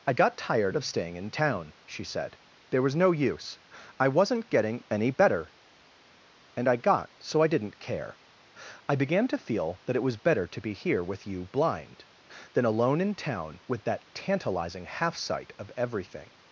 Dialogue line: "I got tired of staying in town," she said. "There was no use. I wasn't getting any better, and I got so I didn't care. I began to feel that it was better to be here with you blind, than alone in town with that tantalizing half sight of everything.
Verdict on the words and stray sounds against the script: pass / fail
pass